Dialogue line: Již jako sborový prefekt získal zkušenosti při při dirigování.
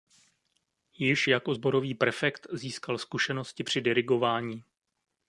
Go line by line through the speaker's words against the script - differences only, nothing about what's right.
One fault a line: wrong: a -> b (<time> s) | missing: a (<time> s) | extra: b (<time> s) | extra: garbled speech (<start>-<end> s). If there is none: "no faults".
missing: při (3.8 s)